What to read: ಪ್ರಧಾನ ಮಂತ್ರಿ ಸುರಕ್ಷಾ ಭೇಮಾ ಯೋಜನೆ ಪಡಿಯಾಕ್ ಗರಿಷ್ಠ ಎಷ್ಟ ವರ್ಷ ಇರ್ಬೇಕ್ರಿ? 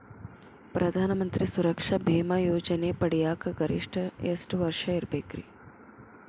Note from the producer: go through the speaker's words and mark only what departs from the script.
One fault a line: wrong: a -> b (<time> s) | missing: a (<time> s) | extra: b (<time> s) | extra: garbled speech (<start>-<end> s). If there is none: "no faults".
no faults